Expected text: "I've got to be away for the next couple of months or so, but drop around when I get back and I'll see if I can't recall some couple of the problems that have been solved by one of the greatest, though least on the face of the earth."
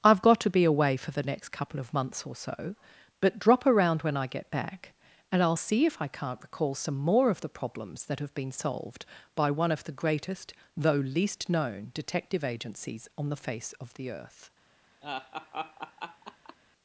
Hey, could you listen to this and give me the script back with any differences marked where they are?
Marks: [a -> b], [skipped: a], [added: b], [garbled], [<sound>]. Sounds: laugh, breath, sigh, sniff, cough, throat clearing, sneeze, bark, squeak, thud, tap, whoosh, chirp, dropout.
"I've got to be away for the next couple of months or so, but drop around when I get back and I'll see if I can't recall some [couple -> more] of the problems that have been solved by one of the greatest, though least [added: known detective agencies] on the face of the earth." [laugh]